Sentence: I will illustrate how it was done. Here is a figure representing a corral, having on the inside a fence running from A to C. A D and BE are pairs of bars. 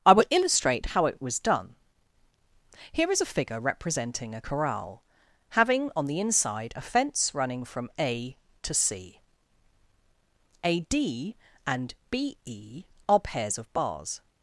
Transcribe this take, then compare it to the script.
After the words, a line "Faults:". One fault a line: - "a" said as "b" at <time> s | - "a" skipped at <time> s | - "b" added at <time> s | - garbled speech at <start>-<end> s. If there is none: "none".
I will illustrate how it was done. Here is a figure representing a corral, having on the inside a fence running from A to C. A D and BE are pairs of bars.
Faults:
none